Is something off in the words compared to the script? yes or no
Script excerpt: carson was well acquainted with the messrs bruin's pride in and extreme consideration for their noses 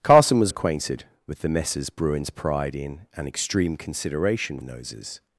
yes